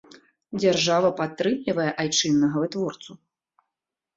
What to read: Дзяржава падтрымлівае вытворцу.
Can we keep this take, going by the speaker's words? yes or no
no